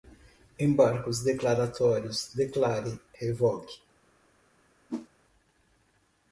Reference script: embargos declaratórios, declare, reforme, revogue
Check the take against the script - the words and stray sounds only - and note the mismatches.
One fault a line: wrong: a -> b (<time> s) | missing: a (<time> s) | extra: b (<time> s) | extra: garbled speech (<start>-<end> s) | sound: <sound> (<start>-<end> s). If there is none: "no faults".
missing: reforme (3.0 s)
sound: whoosh (4.9-5.1 s)